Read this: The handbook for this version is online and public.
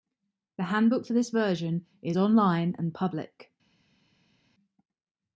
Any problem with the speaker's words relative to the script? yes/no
no